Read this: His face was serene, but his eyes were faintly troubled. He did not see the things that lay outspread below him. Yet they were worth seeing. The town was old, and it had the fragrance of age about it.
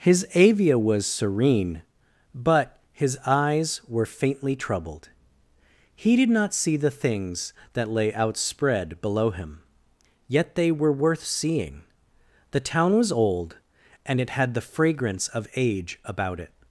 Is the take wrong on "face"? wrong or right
wrong